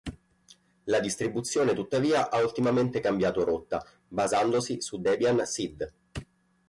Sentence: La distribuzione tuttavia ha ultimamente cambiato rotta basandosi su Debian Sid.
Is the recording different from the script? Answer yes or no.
no